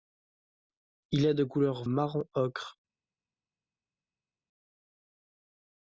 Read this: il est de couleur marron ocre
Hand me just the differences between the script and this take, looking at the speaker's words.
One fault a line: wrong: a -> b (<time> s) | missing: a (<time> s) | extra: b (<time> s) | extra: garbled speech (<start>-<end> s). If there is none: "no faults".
no faults